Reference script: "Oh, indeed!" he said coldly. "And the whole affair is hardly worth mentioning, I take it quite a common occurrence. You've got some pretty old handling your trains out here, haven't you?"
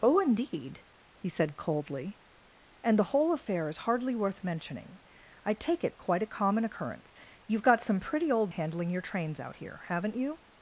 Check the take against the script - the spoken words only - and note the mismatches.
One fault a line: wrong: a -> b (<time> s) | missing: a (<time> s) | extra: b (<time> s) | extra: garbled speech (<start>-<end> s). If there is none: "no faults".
no faults